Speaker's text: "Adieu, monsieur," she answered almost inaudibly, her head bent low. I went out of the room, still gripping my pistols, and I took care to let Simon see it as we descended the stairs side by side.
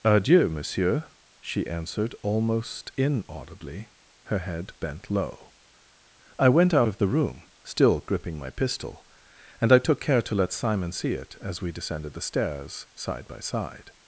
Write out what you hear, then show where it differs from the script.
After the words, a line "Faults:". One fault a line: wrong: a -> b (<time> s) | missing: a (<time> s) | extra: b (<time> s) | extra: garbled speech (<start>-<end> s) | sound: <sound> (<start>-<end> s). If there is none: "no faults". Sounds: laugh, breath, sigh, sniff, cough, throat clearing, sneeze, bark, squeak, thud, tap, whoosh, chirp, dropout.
"Adieu, monsieur," she answered almost inaudibly, her head bent low. I went out of the room, still gripping my pistol, and I took care to let Simon see it as we descended the stairs side by side.
Faults:
wrong: pistols -> pistol (8.5 s)